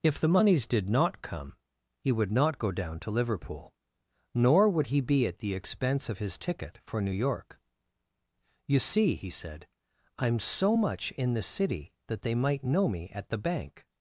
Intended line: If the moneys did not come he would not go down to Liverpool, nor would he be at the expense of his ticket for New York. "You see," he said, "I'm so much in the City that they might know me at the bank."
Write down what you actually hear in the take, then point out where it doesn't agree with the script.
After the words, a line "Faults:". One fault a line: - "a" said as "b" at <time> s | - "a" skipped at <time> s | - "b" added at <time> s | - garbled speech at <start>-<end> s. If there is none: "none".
If the moneys did not come he would not go down to Liverpool, nor would he be at the expense of his ticket for New York. "You see," he said, "I'm so much in the City that they might know me at the bank."
Faults:
none